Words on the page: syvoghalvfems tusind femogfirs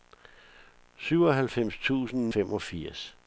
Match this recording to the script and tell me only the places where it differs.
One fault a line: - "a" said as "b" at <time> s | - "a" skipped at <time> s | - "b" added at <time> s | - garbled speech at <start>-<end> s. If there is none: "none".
none